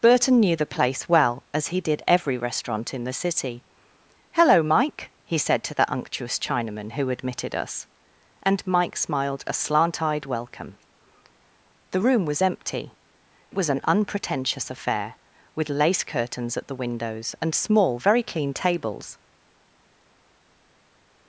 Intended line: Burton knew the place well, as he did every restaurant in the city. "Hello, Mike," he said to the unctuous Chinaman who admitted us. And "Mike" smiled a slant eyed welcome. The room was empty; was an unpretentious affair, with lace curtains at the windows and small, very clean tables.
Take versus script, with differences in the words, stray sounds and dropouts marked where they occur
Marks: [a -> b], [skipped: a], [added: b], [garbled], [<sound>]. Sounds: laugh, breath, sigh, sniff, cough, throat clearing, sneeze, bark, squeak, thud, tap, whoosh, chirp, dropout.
Burton knew the place well, as he did every restaurant in the city. "Hello, Mike," he said to the unctuous Chinaman who admitted us. And "Mike" smiled a slant eyed welcome. The room was empty; was an unpretentious affair, with lace curtains at the windows and small, very clean tables.